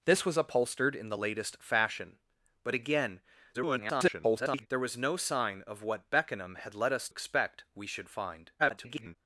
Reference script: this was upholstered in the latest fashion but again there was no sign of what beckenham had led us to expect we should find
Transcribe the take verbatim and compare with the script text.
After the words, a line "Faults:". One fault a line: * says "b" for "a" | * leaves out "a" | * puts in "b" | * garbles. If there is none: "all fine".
this was upholstered in the latest fashion but again [garbled] there was no sign of what beckenham had led us expect we should find [garbled]
Faults:
* garbles
* leaves out "to"
* garbles